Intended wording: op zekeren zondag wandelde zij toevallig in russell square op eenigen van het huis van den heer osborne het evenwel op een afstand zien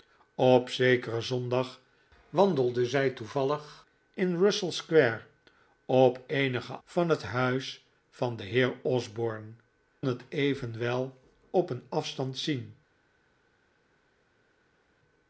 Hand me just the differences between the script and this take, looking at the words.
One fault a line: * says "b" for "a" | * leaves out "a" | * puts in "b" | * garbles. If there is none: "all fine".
all fine